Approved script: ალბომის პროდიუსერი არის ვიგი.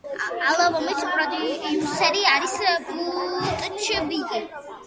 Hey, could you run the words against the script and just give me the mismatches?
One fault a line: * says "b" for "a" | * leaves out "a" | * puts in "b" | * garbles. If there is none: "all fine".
* puts in "ბუტჩ"